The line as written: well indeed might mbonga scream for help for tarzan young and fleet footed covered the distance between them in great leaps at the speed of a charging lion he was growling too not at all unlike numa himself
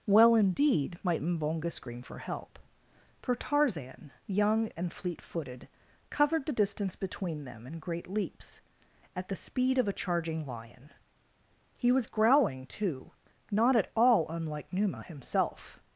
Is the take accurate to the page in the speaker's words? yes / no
yes